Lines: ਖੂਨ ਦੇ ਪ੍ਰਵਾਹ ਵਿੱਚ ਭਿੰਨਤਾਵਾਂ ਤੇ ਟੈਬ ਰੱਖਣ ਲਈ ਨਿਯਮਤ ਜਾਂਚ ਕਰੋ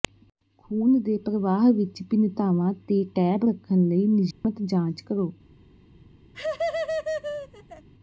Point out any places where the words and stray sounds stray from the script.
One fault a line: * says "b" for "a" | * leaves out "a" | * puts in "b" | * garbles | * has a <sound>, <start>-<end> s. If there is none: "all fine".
* has a dropout, 4.3-4.4 s
* has a laugh, 6.3-7.9 s